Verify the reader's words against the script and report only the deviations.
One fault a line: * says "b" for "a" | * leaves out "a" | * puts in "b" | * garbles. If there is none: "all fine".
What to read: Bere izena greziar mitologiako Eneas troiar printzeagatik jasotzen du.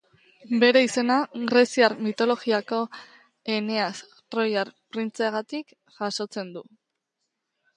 all fine